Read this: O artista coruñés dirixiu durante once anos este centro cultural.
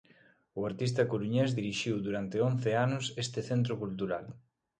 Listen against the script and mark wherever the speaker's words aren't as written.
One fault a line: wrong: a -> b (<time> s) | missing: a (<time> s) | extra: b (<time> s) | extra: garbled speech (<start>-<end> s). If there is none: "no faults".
no faults